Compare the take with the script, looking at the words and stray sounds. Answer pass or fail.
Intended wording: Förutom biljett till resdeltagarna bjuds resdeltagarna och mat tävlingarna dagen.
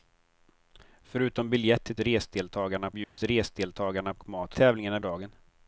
fail